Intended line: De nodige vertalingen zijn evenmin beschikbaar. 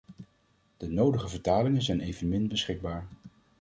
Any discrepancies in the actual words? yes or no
no